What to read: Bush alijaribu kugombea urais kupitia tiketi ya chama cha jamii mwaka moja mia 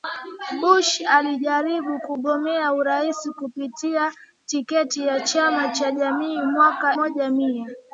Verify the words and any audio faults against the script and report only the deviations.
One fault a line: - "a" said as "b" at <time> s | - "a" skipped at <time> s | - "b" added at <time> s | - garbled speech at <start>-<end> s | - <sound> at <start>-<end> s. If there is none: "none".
none